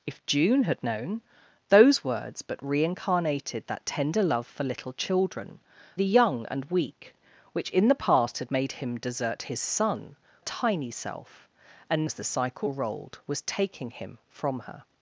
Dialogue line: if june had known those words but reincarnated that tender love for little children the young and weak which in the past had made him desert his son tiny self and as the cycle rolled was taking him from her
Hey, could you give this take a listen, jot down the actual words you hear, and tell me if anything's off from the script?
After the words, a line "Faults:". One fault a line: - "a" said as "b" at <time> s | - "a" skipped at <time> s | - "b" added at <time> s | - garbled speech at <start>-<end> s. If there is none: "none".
if june had known those words but reincarnated that tender love for little children the young and weak which in the past had made him desert his son tiny self and as the cycle rolled was taking him from her
Faults:
none